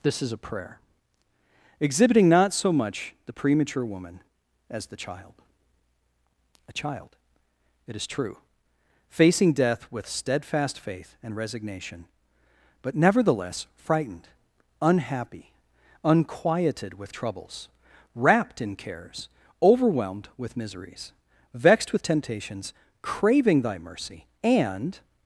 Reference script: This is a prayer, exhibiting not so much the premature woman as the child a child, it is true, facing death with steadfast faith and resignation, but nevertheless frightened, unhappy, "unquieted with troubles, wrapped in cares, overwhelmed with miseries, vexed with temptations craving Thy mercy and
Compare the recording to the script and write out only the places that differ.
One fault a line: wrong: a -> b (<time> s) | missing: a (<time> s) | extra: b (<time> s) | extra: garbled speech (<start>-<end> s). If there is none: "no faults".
no faults